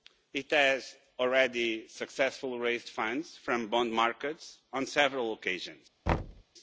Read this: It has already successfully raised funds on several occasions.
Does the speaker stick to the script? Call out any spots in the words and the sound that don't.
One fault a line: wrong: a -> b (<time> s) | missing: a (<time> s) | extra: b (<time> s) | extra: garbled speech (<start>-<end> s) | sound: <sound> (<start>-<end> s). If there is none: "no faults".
extra: from bond markets (3.3 s)
sound: thud (6.1-6.4 s)